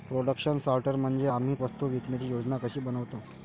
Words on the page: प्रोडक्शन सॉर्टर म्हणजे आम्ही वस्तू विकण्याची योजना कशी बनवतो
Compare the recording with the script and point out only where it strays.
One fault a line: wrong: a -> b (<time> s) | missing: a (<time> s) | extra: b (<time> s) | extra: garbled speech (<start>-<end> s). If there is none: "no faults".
no faults